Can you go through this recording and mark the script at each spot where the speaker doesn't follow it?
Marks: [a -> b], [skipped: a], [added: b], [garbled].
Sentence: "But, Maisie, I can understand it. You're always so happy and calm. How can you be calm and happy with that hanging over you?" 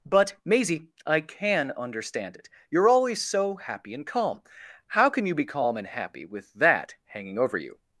"But, Maisie, I can understand it. You're always so happy and calm. How can you be calm and happy with that hanging over you?"